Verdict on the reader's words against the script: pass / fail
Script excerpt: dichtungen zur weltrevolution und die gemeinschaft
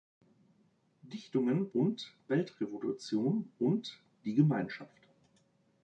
fail